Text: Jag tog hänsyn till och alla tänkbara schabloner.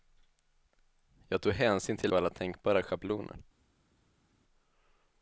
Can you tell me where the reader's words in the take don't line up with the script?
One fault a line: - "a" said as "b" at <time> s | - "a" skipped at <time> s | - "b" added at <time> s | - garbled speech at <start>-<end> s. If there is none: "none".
none